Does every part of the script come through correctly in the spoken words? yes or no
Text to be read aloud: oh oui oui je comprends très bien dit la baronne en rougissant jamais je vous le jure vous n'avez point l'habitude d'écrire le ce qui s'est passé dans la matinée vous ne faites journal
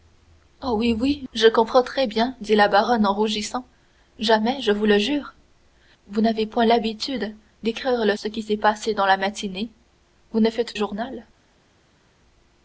yes